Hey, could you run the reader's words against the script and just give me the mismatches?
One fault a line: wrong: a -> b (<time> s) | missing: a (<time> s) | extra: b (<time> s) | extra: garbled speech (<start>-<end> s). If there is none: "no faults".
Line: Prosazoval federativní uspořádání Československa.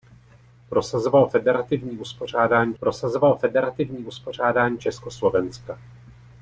extra: prosazoval federativní uspořádání (2.8 s)